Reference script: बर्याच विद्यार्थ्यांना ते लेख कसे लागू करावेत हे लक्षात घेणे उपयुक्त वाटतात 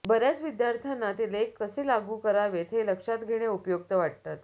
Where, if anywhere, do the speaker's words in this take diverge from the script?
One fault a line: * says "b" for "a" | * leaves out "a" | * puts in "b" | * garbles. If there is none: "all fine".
all fine